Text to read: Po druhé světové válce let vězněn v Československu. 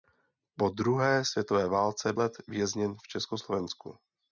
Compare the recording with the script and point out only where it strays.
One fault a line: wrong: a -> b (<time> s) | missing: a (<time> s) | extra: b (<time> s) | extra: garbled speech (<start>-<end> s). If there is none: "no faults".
no faults